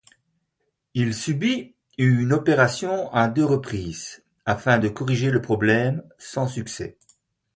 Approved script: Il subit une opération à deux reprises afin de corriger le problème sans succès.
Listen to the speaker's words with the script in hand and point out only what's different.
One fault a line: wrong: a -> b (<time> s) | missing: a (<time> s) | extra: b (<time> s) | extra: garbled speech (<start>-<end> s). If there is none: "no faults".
no faults